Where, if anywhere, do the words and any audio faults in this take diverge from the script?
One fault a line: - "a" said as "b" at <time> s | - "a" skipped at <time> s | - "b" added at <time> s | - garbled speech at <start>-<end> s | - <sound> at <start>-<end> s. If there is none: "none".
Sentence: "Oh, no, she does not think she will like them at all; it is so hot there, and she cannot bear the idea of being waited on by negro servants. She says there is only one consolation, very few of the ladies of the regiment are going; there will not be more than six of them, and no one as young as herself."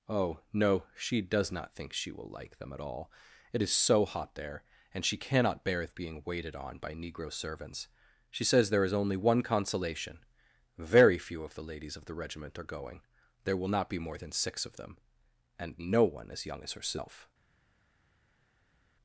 - "the idea" skipped at 5.8 s